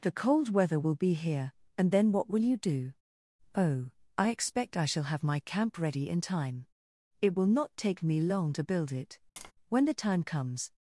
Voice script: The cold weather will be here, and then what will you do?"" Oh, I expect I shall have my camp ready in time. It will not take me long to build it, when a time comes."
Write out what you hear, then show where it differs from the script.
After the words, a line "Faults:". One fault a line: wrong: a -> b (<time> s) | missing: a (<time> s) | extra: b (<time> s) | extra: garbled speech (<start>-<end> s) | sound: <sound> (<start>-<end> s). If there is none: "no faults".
The cold weather will be here, and then what will you do?"" Oh, I expect I shall have my camp ready in time. It will not take me long to build it, when the time comes."
Faults:
sound: tap (9.4-9.5 s)
wrong: a -> the (9.8 s)